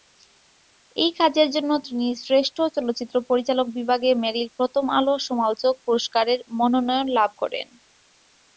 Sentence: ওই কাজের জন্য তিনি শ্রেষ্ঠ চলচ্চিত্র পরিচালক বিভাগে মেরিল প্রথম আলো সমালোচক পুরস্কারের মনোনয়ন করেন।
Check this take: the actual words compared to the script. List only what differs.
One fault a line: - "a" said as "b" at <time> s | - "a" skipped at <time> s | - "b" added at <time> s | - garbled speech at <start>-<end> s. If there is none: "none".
- "ওই" said as "এই" at 0.9 s
- "লাভ" added at 7.2 s